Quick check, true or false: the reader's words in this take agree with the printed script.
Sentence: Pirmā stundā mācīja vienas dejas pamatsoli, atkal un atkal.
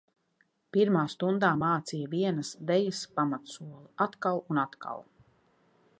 true